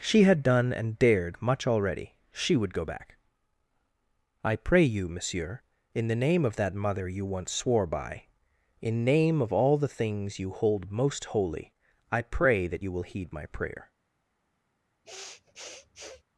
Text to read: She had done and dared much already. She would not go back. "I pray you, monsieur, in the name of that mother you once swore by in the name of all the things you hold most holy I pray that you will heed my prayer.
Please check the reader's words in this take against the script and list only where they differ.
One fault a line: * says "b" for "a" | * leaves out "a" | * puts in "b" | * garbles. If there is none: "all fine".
* leaves out "not"
* leaves out "the"